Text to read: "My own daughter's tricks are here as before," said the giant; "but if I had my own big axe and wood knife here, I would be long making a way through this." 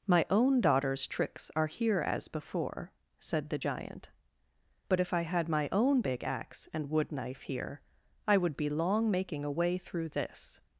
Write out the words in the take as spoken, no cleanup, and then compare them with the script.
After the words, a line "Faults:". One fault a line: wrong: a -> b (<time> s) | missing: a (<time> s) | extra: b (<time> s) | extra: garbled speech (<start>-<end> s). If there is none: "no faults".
"My own daughter's tricks are here as before," said the giant; "but if I had my own big axe and wood knife here, I would be long making a way through this."
Faults:
no faults